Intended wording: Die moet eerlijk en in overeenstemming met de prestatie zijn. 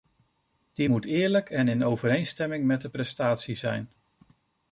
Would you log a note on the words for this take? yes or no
no